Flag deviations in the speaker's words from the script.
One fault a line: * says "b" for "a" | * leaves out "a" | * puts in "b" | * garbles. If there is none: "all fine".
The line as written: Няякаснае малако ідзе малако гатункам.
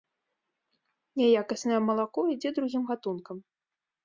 * says "другім" for "малако"